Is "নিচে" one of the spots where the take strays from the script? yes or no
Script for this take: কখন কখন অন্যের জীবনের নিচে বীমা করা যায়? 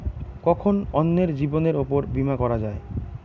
yes